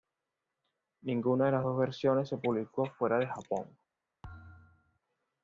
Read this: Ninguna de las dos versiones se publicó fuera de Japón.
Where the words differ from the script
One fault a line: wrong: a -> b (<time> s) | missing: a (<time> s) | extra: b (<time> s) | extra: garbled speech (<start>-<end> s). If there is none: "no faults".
no faults